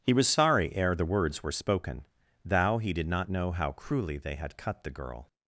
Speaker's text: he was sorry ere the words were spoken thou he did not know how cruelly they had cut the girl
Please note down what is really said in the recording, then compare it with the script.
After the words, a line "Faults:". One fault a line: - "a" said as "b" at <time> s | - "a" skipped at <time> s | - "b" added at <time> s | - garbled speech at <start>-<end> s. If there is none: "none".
he was sorry ere the words were spoken thou he did not know how cruelly they had cut the girl
Faults:
none